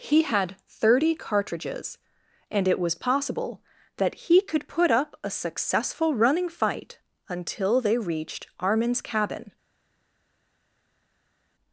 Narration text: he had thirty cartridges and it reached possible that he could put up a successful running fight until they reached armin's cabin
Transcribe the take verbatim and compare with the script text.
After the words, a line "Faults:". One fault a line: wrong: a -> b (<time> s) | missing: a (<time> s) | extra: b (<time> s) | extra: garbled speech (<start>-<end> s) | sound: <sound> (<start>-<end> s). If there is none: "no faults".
he had thirty cartridges and it was possible that he could put up a successful running fight until they reached armin's cabin
Faults:
wrong: reached -> was (2.8 s)